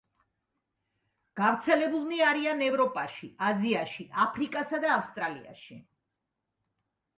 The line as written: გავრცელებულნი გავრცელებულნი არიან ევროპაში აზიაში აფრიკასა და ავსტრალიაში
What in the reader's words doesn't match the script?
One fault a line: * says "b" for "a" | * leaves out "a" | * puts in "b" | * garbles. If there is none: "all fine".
* leaves out "გავრცელებულნი"